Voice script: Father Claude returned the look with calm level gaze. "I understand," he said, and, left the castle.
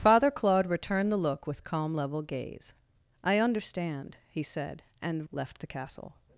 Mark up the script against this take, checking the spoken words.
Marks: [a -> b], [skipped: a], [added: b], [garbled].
Father Claude returned the look with calm level gaze. "I understand," he said, and, left the castle.